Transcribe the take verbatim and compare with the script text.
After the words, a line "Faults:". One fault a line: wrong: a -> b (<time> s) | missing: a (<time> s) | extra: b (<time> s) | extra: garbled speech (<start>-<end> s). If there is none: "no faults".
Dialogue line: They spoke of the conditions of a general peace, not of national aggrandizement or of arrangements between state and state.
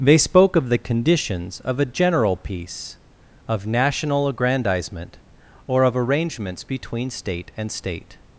They spoke of the conditions of a general peace, of national aggrandizement or of arrangements between state and state.
Faults:
missing: not (3.0 s)